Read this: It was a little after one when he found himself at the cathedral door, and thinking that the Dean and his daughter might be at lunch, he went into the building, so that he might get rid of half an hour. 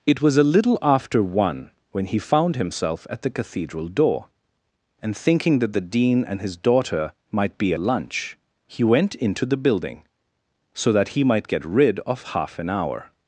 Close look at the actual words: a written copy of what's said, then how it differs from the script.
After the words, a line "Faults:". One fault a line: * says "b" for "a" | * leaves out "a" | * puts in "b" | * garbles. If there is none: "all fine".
It was a little after one when he found himself at the cathedral door, and thinking that the Dean and his daughter might be lunch, he went into the building, so that he might get rid of half an hour.
Faults:
* leaves out "at"